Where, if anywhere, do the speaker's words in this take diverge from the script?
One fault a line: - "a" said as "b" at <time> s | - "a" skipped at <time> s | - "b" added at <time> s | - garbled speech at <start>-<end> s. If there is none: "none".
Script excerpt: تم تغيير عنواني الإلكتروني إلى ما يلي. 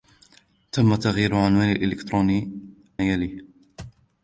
- "إلى ما" skipped at 2.5 s